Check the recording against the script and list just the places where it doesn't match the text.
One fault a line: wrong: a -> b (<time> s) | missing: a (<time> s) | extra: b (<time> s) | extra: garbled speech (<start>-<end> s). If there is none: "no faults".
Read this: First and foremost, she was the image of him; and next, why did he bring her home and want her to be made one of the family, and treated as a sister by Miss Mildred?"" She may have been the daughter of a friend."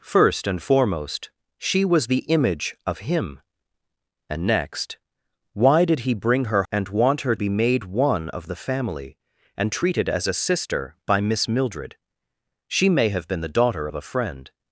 missing: home (6.6 s)
missing: to (7.4 s)